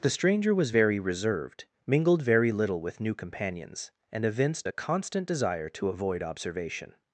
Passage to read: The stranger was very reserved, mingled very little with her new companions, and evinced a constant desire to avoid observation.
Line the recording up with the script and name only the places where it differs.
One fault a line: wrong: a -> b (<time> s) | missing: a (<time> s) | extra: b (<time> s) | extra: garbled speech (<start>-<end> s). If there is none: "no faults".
missing: her (3.0 s)